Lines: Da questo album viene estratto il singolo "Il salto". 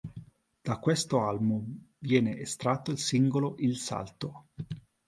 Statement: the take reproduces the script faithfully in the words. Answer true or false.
true